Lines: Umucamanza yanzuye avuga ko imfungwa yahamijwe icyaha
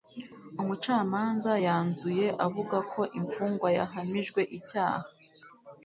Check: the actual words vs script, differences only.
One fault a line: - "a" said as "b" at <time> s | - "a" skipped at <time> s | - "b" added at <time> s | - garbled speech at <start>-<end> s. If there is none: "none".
none